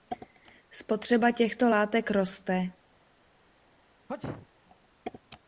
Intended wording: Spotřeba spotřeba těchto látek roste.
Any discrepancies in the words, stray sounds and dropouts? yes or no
yes